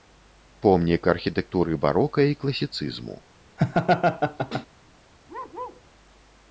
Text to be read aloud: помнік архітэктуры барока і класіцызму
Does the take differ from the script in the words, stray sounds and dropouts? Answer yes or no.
yes